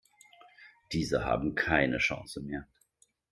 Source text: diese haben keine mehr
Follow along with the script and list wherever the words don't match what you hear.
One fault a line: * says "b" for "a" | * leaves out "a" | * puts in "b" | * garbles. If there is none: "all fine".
* puts in "chance"